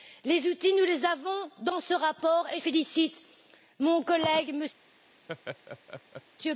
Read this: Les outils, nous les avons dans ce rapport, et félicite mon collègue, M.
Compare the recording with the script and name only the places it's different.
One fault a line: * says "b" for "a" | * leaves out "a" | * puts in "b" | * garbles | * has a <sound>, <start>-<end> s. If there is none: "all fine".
* has a laugh, 5.3-6.2 s